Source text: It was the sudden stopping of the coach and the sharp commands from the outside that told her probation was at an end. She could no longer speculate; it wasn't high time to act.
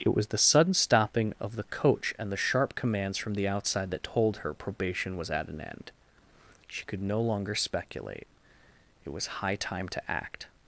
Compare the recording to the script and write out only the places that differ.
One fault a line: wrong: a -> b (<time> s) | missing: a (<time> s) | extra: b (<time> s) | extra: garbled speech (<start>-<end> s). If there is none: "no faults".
wrong: wasn't -> was (9.1 s)